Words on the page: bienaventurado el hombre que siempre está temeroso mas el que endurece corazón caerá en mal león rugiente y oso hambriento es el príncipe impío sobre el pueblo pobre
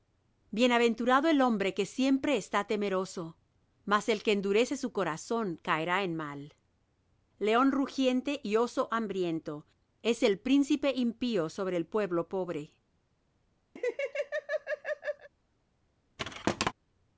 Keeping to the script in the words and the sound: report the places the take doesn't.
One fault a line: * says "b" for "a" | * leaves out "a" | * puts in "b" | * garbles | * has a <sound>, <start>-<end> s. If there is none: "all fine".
* puts in "su"
* has a laugh, 13.8-15.3 s
* has a thud, 16.2-16.7 s